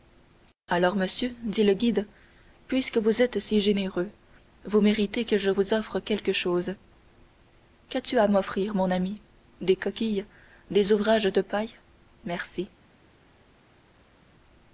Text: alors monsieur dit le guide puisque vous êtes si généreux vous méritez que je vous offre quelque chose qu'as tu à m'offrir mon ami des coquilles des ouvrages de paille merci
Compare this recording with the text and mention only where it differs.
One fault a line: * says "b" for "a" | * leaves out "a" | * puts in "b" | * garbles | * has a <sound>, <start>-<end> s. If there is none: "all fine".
all fine